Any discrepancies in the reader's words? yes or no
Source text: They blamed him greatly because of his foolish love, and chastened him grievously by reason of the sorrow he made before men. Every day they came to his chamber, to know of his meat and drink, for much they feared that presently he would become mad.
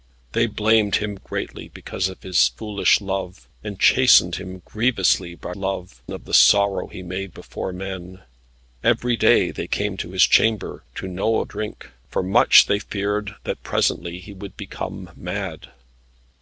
yes